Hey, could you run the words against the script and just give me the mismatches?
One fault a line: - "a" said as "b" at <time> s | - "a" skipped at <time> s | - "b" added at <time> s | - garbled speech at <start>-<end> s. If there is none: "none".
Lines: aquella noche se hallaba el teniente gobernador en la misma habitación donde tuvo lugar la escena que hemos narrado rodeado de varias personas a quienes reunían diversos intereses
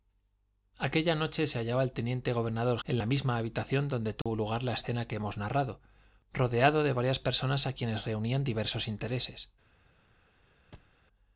none